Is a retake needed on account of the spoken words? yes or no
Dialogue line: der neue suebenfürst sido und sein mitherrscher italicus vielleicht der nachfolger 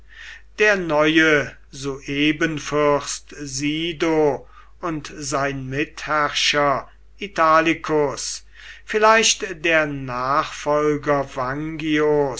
no